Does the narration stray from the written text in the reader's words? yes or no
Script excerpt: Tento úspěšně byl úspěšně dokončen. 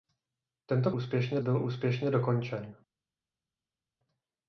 no